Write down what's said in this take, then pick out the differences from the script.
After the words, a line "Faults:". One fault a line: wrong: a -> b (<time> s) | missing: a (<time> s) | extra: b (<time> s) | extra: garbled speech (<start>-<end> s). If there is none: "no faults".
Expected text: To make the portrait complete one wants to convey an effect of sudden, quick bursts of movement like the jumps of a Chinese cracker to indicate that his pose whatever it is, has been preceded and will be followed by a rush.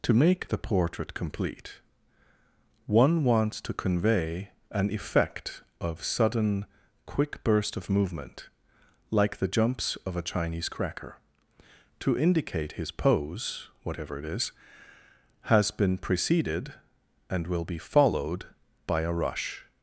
To make the portrait complete one wants to convey an effect of sudden, quick burst of movement like the jumps of a Chinese cracker to indicate his pose whatever it is, has been preceded and will be followed by a rush.
Faults:
wrong: bursts -> burst (7.4 s)
missing: that (12.7 s)